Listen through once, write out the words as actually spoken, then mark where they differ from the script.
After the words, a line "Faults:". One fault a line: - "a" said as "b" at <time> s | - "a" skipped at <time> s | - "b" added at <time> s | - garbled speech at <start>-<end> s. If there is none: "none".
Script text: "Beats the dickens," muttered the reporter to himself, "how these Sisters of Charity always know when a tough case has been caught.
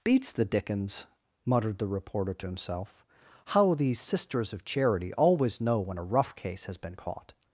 "Beats the dickens," muttered the reporter to himself, "how these Sisters of Charity always know when a rough case has been caught.
Faults:
- "tough" said as "rough" at 6.0 s